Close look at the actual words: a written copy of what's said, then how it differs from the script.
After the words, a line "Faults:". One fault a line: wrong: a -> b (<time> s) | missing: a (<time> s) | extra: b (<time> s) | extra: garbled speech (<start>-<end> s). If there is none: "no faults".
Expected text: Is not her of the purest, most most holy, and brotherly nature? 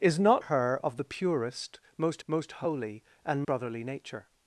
Is not her of the purest, most most holy, and brotherly nature?
Faults:
no faults